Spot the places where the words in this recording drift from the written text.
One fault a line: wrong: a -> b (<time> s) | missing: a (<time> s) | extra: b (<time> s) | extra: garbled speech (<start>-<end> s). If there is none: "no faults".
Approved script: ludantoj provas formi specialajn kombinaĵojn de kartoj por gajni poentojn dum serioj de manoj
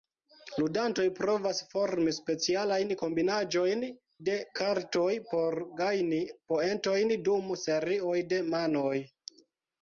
no faults